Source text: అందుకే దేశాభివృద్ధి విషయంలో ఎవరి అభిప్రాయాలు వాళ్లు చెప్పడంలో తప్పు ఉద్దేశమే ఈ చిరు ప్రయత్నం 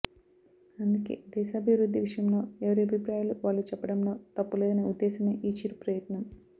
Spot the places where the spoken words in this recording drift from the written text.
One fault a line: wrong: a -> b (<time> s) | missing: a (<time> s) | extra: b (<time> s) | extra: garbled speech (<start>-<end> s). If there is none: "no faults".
extra: లేదనే (4.6 s)